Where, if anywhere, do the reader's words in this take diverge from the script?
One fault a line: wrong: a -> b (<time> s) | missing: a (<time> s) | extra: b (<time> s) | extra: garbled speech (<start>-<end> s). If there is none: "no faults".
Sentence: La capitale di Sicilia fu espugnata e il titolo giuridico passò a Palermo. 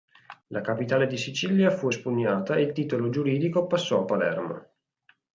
no faults